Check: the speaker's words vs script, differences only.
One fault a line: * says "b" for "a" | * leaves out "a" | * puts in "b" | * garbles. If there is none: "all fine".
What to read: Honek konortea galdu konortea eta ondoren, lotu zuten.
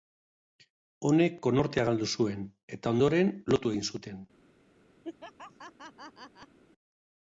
* says "zuen" for "konortea"
* puts in "egin"